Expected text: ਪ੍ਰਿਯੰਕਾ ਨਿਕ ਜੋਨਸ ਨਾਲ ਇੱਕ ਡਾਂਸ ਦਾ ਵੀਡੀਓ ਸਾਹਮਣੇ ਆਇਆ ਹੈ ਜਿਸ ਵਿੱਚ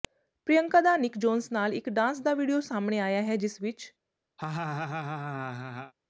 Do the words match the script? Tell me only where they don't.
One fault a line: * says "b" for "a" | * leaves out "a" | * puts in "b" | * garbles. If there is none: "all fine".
* puts in "ਦਾ"